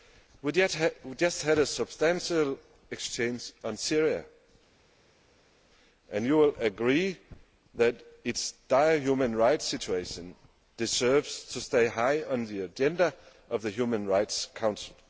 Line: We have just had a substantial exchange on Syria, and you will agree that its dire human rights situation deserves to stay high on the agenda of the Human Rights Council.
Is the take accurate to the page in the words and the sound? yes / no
yes